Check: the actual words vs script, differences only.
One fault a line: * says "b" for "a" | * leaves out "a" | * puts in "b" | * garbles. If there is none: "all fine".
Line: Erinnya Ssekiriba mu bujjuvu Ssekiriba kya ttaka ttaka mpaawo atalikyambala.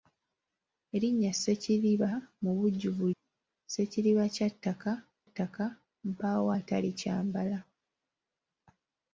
all fine